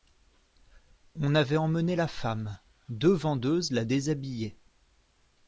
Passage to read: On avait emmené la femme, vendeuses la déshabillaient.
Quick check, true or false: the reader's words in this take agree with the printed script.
false